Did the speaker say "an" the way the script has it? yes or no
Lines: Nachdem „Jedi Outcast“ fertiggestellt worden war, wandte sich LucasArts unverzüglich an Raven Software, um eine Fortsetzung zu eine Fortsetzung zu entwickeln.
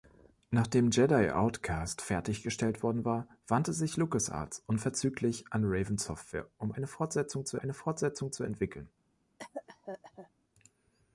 yes